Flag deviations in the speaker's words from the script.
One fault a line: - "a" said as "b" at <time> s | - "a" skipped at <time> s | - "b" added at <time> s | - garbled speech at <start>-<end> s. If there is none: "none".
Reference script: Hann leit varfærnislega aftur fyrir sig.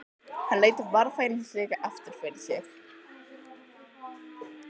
none